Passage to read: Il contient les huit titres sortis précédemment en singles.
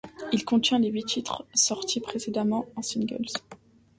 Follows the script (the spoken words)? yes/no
yes